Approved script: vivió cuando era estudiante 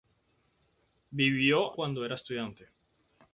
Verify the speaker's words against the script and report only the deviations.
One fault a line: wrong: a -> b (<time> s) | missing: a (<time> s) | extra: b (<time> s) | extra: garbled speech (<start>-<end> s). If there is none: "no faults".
no faults